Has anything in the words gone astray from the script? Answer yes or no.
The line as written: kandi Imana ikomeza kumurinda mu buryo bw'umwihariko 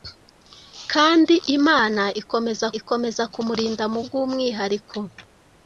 yes